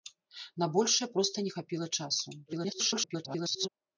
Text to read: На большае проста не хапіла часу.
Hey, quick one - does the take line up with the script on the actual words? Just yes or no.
no